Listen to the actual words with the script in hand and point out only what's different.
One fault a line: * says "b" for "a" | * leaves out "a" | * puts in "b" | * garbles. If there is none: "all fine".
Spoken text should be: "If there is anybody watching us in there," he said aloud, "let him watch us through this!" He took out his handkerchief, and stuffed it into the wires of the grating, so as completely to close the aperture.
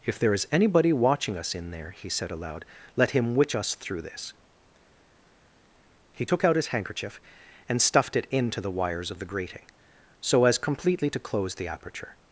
* says "witch" for "watch"